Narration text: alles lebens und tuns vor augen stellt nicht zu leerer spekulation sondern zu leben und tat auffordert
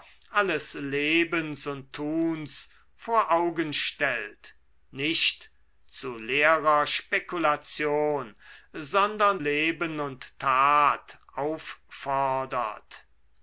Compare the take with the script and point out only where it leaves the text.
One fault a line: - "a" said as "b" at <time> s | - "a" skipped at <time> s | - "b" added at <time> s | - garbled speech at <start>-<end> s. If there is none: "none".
- "zu" skipped at 9.4 s